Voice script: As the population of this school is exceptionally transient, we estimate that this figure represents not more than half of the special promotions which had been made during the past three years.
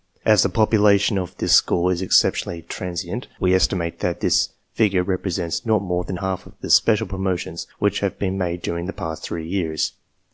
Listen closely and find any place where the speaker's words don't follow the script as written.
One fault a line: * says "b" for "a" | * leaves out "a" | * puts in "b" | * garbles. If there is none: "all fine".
* says "have" for "had"